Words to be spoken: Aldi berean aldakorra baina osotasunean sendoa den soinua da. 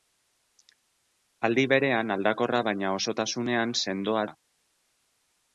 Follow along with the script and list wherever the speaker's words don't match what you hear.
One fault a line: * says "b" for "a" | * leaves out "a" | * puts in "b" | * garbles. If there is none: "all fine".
* leaves out "den soinua"